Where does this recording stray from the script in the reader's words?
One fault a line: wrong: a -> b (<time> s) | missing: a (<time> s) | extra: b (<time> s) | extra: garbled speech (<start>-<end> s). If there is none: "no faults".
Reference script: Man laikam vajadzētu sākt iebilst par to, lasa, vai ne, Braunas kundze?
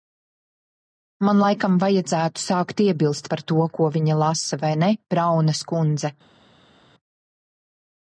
extra: ko viņa (3.8 s)